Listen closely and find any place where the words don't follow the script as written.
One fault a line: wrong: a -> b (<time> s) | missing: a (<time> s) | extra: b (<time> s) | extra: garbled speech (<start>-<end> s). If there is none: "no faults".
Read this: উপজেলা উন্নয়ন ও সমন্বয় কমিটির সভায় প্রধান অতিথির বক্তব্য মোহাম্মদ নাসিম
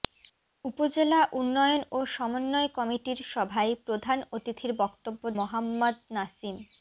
no faults